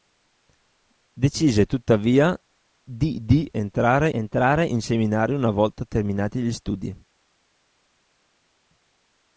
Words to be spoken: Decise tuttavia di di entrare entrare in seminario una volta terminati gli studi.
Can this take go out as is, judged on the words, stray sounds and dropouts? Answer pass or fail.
pass